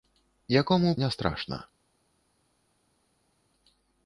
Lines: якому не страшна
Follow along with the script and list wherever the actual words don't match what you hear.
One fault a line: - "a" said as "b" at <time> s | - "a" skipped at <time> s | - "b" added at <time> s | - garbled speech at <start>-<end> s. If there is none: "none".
none